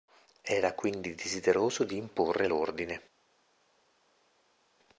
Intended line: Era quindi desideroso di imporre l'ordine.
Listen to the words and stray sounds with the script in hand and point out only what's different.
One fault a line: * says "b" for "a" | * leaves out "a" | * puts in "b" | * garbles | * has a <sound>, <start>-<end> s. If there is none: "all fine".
all fine